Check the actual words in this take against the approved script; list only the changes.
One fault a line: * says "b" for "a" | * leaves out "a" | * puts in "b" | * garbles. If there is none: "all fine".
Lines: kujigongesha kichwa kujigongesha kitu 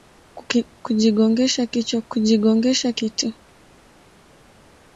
all fine